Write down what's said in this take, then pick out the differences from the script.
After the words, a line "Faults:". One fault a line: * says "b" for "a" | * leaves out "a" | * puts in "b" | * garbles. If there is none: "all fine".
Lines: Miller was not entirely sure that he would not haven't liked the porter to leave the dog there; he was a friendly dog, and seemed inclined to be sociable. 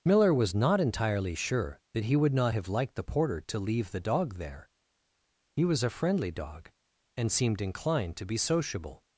Miller was not entirely sure that he would not have liked the porter to leave the dog there; he was a friendly dog, and seemed inclined to be sociable.
Faults:
* says "have" for "haven't"